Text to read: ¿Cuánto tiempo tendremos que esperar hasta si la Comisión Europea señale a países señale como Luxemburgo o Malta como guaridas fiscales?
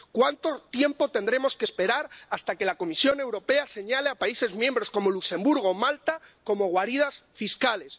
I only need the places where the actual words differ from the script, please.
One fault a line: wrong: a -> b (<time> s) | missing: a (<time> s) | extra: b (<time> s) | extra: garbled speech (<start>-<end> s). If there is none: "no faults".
wrong: si -> que (2.6 s)
wrong: señale -> miembros (4.5 s)